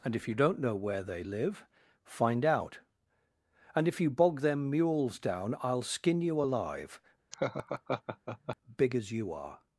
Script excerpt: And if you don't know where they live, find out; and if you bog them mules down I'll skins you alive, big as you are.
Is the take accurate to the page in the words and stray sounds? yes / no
no